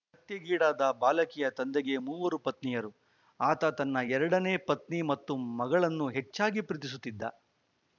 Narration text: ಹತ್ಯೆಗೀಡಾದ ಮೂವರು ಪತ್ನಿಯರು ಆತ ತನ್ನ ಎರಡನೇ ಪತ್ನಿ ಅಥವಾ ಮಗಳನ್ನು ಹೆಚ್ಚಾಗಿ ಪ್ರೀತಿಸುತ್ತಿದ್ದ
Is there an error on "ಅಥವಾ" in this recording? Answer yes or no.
yes